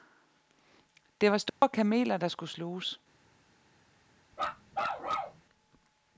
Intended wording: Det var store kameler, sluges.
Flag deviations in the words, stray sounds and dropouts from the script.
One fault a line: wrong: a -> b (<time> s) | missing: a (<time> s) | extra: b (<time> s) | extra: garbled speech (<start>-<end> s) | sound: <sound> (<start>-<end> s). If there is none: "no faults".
sound: dropout (1.5-1.6 s)
extra: der skulle (2.2 s)
sound: bark (4.3-5.4 s)